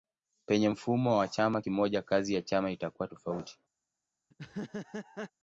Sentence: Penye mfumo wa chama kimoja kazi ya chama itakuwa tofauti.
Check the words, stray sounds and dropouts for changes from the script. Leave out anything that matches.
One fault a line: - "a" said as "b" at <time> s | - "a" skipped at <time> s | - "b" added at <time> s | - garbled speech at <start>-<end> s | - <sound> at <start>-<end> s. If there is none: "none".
- laugh at 4.3-5.3 s